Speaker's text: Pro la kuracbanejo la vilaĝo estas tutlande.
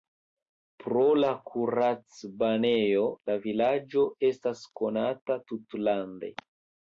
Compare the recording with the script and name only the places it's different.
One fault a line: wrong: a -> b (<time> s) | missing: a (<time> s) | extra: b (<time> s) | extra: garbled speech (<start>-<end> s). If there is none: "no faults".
extra: konata (4.8 s)